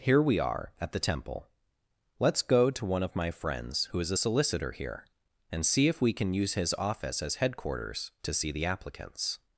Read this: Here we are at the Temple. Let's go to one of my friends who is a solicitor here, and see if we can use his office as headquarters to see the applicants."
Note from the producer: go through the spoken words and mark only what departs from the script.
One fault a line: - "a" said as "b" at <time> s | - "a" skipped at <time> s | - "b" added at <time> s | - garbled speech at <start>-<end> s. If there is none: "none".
none